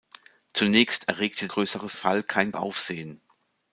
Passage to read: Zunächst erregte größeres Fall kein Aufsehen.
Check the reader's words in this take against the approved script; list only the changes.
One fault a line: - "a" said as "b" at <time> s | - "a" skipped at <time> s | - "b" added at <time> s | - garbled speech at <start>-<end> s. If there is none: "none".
none